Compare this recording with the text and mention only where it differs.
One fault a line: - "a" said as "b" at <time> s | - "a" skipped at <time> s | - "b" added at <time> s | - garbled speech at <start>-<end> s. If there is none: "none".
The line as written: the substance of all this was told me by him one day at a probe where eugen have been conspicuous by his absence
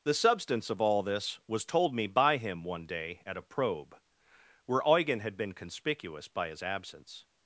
- "have" said as "had" at 5.2 s